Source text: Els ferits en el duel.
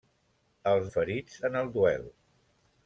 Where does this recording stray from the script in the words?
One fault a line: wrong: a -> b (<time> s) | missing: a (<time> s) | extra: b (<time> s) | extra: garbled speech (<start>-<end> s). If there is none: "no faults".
no faults